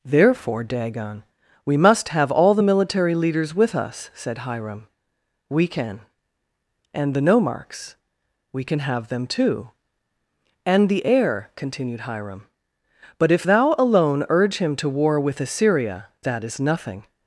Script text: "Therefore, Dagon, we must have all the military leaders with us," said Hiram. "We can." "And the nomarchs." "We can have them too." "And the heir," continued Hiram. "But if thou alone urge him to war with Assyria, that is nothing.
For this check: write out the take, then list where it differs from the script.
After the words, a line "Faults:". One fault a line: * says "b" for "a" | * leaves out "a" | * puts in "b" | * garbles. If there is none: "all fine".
"Therefore, Dagon, we must have all the military leaders with us," said Hiram. "We can." "And the nomarchs." "We can have them too." "And the heir," continued Hiram. "But if thou alone urge him to war with Assyria, that is nothing.
Faults:
all fine